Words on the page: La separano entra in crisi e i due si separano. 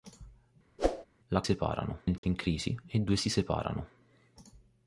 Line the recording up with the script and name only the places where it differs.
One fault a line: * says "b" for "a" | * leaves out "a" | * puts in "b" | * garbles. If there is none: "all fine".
all fine